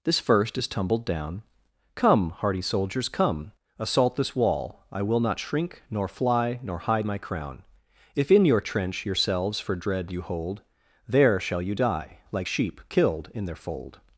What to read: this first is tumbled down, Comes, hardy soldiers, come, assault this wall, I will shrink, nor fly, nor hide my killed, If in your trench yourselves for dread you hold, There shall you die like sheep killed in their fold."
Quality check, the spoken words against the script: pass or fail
fail